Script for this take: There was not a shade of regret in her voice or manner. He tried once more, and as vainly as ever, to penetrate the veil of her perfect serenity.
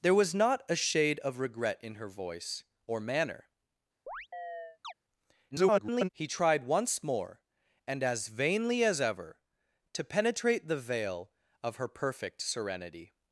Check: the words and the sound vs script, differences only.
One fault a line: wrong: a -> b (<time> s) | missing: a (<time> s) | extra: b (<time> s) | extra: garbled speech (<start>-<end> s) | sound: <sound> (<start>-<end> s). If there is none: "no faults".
sound: chirp (4.1-4.9 s)
extra: garbled speech (5.5-6.1 s)